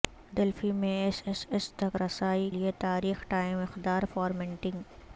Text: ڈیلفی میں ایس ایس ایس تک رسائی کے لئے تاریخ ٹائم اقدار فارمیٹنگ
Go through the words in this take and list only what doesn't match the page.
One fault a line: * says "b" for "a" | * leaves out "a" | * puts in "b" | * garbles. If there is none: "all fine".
* leaves out "کے"